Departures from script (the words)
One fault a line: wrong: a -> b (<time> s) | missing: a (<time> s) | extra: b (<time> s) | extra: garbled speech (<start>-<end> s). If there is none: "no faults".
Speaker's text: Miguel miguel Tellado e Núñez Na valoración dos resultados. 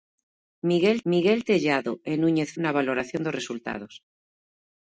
no faults